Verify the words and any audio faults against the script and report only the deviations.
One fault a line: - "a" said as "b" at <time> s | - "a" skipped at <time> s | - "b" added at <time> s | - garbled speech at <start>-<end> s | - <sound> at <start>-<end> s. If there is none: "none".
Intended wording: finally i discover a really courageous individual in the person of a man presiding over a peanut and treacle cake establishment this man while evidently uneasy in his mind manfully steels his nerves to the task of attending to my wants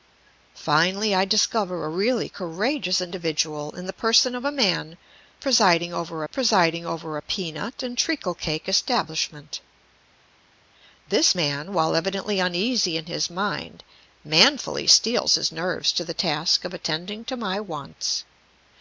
- "presiding over" added at 6.3 s